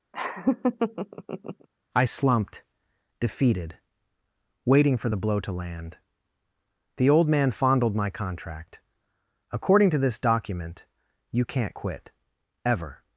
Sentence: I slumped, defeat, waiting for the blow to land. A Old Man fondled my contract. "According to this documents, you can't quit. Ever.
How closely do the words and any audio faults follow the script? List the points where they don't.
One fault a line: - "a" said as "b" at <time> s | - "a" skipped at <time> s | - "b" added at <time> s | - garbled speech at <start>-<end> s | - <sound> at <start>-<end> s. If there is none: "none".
- laugh at 0.1-1.7 s
- "defeat" said as "defeated" at 3.2 s
- "A" said as "The" at 7.0 s
- "documents" said as "document" at 10.2 s